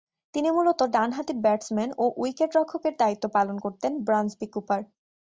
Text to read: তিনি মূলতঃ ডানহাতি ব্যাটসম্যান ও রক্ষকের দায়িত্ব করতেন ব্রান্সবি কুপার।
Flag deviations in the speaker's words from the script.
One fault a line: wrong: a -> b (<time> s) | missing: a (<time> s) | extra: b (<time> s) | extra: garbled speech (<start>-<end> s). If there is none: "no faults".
extra: উইকেট (2.2 s)
extra: পালন (3.4 s)